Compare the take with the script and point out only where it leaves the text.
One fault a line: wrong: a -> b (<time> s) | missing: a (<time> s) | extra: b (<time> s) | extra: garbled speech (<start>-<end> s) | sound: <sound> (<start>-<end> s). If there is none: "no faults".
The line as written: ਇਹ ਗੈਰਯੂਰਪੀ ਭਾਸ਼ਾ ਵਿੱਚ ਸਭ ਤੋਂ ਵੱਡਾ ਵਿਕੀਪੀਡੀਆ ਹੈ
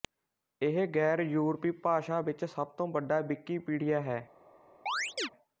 sound: chirp (4.9-5.3 s)